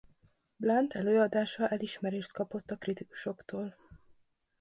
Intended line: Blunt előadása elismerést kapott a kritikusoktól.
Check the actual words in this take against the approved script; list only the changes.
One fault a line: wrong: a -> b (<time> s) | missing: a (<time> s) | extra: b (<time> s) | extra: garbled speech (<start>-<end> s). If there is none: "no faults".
no faults